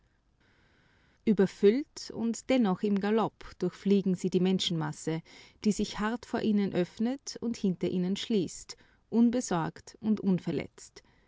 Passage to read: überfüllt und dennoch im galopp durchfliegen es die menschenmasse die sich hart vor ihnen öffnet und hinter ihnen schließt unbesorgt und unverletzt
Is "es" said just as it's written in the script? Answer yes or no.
no